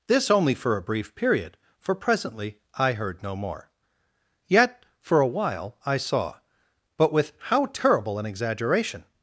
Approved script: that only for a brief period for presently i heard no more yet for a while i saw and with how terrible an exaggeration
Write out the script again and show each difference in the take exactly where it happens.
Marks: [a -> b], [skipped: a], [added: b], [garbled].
[that -> this] only for a brief period for presently i heard no more yet for a while i saw [and -> but] with how terrible an exaggeration